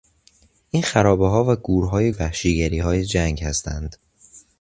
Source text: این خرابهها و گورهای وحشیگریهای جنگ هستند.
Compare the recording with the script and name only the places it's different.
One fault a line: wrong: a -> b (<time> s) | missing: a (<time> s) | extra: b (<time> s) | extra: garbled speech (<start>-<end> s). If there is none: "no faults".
no faults